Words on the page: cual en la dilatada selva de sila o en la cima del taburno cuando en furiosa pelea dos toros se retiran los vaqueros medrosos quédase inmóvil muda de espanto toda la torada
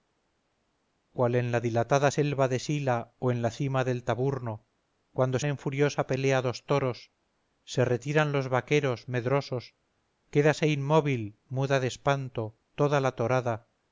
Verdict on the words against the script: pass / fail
pass